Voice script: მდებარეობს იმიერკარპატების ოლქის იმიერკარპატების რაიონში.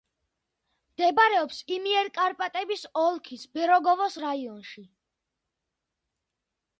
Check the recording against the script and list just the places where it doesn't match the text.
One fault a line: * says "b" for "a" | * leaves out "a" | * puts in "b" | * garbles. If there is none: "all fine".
* says "ბერეგოვოს" for "იმიერკარპატების"